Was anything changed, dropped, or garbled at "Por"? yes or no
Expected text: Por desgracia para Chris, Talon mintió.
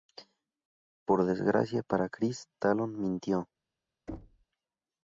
no